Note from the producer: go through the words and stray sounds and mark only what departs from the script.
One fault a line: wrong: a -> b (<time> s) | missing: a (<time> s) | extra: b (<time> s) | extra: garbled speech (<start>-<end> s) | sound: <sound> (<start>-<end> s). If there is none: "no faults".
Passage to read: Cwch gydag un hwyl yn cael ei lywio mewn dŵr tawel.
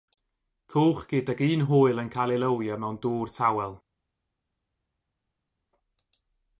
no faults